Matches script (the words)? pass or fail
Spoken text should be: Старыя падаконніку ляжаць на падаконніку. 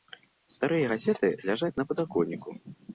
fail